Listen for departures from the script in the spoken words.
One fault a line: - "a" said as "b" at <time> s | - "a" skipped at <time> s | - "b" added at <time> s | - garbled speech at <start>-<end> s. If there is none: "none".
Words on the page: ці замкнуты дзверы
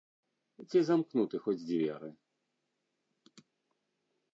- "хоць" added at 1.5 s